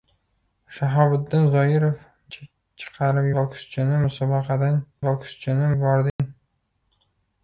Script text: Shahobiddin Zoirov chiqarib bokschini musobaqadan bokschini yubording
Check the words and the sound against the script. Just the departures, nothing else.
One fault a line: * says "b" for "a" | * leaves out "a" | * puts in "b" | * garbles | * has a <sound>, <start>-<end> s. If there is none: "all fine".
* has a dropout, 6.1-6.2 s